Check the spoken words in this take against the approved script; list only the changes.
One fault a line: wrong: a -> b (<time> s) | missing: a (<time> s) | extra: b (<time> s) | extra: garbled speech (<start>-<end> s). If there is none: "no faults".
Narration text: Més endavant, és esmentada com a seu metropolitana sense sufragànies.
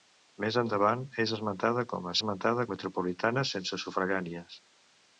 wrong: seu -> esmentada (2.2 s)